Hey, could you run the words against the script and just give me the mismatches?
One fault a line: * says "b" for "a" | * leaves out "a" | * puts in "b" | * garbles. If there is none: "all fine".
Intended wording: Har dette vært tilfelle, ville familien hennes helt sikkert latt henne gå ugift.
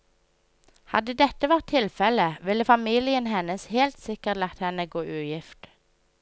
* says "Hadde" for "Har"